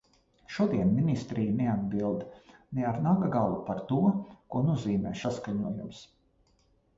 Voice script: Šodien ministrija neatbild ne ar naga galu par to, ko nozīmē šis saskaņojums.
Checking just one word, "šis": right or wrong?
wrong